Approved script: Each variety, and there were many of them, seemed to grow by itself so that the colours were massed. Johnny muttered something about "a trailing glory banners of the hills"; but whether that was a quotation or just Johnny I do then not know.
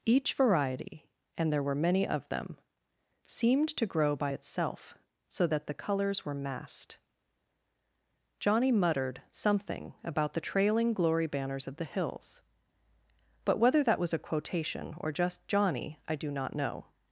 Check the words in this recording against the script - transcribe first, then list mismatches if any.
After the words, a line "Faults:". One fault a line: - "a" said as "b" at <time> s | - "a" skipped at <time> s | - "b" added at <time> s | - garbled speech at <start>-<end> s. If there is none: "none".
Each variety, and there were many of them, seemed to grow by itself so that the colours were massed. Johnny muttered something about "the trailing glory banners of the hills"; but whether that was a quotation or just Johnny I do not know.
Faults:
- "a" said as "the" at 10.3 s
- "then" skipped at 16.3 s